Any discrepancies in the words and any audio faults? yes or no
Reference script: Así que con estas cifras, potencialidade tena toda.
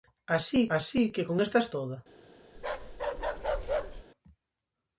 yes